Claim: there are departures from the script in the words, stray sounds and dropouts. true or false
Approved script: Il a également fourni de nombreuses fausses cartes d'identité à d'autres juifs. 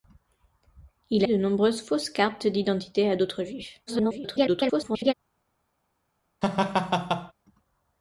true